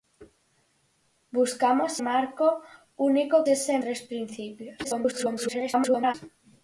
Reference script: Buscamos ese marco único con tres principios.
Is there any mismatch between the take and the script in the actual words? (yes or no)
yes